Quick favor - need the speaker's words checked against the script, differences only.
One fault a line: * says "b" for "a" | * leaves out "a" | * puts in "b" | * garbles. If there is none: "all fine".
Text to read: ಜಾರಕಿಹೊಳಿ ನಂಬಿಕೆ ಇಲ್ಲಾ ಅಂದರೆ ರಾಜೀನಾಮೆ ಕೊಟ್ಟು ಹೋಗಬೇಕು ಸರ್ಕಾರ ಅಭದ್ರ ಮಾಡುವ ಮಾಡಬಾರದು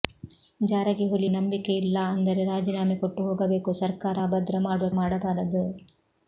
all fine